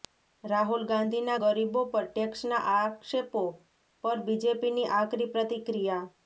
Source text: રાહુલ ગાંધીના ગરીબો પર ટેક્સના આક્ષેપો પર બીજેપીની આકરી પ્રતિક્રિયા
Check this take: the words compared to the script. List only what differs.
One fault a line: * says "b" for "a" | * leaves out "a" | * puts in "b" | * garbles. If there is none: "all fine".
all fine